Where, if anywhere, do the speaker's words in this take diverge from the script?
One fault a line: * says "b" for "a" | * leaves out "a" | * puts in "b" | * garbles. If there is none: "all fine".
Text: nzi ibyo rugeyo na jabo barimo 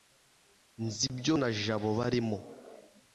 * leaves out "rugeyo"